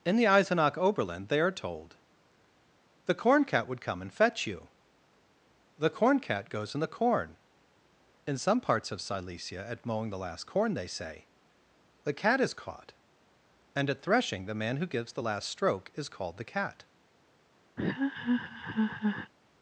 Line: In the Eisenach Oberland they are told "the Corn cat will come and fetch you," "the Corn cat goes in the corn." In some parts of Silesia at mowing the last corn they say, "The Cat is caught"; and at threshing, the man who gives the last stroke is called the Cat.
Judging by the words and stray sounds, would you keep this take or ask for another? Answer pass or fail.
fail